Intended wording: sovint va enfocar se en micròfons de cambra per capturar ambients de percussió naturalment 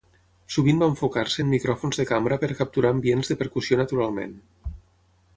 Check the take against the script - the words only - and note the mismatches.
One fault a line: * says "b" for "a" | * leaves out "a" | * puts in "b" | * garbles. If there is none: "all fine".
all fine